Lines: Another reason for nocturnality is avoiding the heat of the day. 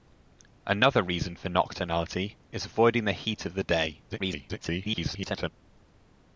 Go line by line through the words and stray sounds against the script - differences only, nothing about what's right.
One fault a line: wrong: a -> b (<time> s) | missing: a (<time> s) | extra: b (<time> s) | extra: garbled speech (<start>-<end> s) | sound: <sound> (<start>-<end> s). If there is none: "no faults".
extra: garbled speech (4.1-5.5 s)